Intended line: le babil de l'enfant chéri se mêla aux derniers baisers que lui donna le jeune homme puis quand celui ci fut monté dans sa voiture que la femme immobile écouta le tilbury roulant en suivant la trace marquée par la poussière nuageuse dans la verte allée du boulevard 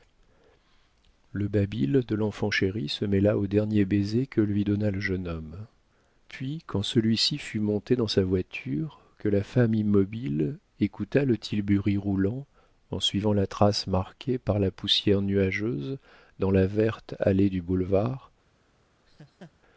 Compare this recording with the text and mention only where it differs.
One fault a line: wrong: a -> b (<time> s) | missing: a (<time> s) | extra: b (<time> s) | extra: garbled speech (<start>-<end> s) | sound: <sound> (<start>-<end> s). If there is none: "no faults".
sound: laugh (19.1-19.5 s)